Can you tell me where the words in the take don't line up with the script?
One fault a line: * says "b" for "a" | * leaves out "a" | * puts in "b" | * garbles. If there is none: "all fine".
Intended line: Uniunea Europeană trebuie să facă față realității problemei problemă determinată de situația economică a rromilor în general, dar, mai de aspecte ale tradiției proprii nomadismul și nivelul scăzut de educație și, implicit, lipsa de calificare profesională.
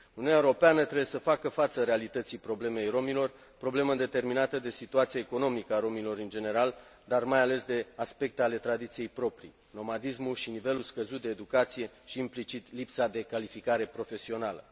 * puts in "rromilor"
* puts in "ales"